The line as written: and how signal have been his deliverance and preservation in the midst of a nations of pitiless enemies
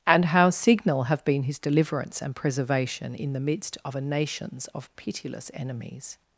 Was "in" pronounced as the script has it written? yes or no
yes